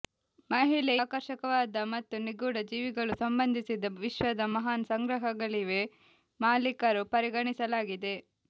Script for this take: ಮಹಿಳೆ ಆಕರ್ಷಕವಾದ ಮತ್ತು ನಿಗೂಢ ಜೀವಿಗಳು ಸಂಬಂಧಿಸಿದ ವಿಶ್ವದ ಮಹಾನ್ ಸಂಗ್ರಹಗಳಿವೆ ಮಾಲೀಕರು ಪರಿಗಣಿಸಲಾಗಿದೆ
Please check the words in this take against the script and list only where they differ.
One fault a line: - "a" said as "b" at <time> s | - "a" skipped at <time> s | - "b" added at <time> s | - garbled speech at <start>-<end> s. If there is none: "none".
none